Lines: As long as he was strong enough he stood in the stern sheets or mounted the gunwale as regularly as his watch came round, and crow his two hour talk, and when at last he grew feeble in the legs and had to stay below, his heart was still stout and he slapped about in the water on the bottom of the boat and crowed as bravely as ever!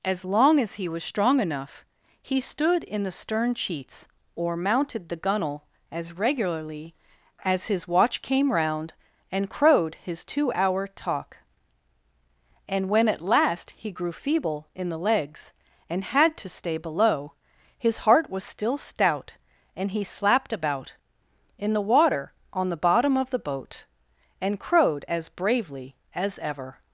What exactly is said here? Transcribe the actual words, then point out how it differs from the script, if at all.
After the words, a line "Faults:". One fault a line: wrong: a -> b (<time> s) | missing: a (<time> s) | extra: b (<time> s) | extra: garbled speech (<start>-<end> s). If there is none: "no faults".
As long as he was strong enough he stood in the stern sheets or mounted the gunwale as regularly as his watch came round, and crowed his two hour talk, and when at last he grew feeble in the legs and had to stay below, his heart was still stout and he slapped about in the water on the bottom of the boat and crowed as bravely as ever!
Faults:
wrong: crow -> crowed (9.5 s)